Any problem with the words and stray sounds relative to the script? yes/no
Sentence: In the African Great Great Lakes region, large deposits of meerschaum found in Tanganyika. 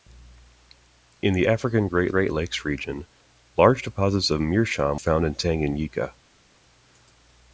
no